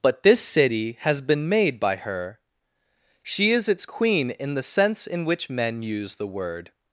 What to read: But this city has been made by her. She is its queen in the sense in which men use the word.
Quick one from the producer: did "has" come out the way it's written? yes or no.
yes